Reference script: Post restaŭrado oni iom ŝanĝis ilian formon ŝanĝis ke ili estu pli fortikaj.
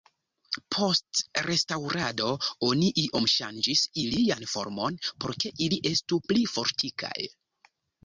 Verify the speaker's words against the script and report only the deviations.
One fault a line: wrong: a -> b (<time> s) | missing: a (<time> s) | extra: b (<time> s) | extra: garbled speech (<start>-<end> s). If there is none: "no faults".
wrong: ŝanĝis -> por (5.1 s)